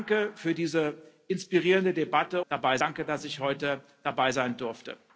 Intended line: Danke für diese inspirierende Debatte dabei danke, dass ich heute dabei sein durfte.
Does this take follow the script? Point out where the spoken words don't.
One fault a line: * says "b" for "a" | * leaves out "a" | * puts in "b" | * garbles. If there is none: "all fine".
all fine